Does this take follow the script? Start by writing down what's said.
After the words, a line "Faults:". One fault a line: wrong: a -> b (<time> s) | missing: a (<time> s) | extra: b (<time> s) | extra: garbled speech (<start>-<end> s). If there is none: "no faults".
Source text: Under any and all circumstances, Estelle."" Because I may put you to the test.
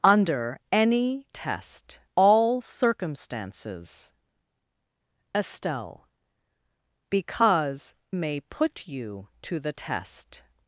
Under any test all circumstances, Estelle."" Because may put you to the test.
Faults:
wrong: and -> test (1.3 s)
missing: I (7.9 s)